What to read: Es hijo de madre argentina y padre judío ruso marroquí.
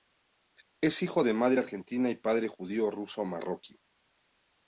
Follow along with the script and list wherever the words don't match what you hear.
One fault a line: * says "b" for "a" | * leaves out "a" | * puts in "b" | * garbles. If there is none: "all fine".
all fine